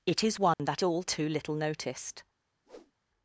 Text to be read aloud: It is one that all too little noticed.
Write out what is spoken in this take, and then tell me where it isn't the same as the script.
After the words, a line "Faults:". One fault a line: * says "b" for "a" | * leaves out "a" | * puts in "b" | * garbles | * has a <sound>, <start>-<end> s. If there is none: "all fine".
It is one that all too little noticed.
Faults:
* has a dropout, 0.5-0.6 s
* has a whoosh, 2.7-2.9 s